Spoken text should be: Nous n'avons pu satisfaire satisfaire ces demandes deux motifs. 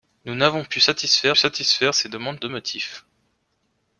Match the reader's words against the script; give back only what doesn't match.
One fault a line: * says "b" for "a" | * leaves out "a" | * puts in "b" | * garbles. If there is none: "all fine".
all fine